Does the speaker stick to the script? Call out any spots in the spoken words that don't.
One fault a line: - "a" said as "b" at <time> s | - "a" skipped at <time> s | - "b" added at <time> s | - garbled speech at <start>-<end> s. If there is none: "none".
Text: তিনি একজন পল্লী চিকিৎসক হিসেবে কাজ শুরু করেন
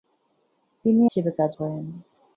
- "একজন পল্লী চিকিৎসক" skipped at 1.0 s
- "শুরু" skipped at 1.5 s